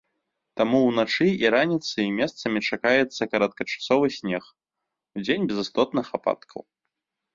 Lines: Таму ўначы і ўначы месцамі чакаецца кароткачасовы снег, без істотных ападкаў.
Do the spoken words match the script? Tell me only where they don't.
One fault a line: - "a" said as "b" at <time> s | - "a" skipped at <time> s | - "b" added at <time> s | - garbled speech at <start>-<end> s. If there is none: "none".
- "ўначы" said as "раніцай" at 1.6 s
- "удзень" added at 5.2 s